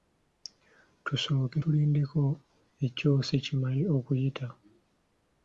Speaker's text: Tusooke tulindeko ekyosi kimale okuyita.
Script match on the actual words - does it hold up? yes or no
yes